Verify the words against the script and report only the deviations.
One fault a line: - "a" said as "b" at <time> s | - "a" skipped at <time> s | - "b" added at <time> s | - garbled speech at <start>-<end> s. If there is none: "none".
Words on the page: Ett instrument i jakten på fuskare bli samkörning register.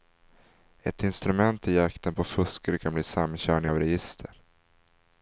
- "kan" added at 2.8 s
- "av" added at 3.7 s